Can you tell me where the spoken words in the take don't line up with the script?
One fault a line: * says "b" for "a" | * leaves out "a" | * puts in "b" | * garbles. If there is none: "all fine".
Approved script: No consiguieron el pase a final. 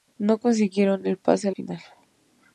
all fine